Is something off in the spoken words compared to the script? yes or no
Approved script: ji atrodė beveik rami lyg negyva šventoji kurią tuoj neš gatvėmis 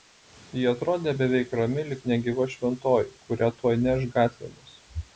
no